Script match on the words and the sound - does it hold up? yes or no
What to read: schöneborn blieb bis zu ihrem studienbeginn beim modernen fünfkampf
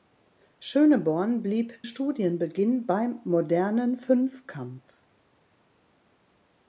no